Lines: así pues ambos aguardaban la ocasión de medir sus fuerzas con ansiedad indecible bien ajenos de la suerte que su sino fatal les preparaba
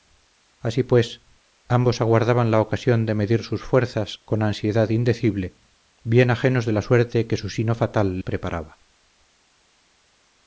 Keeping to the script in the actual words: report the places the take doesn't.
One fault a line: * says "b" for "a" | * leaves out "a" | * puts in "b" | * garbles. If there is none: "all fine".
* leaves out "les"